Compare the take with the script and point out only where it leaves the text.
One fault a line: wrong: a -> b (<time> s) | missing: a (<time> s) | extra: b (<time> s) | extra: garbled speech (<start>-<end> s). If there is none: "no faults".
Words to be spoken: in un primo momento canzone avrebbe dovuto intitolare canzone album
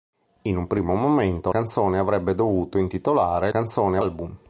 no faults